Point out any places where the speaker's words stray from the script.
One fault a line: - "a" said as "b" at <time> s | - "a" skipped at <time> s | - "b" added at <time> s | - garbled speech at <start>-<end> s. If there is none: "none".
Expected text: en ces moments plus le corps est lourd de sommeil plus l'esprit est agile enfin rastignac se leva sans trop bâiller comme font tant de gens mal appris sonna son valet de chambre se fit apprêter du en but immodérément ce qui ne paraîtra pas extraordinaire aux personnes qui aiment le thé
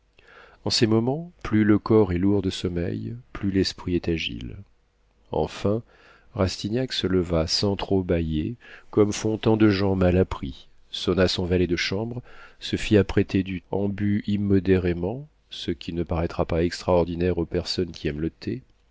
none